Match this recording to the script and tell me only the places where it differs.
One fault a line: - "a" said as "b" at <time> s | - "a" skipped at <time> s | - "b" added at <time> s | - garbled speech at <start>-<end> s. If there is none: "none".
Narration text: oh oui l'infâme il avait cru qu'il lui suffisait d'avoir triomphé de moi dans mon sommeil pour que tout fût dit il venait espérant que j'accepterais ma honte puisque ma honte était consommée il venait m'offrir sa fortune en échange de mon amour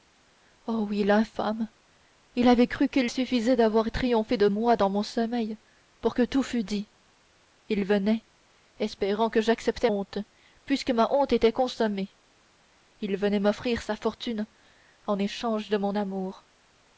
- "lui" skipped at 3.1 s
- "ma" skipped at 9.9 s